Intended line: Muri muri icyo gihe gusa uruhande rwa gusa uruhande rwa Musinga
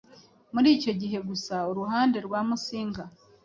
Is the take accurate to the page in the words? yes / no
no